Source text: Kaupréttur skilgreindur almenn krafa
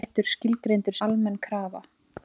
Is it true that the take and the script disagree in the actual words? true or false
false